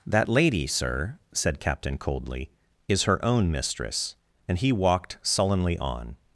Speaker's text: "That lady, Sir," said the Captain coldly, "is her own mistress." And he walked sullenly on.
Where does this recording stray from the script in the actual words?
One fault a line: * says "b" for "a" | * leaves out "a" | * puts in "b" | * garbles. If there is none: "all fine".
* leaves out "the"